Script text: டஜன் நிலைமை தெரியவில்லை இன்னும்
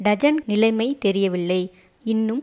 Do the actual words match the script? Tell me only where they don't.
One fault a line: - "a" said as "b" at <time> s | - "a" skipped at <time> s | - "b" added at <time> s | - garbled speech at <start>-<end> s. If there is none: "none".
none